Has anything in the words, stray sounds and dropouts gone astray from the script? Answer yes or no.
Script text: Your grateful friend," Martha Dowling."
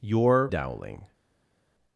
yes